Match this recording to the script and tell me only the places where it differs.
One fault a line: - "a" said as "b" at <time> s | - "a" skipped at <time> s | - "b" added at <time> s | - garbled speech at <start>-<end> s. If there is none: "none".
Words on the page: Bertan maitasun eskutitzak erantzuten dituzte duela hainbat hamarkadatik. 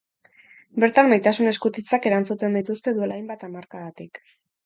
none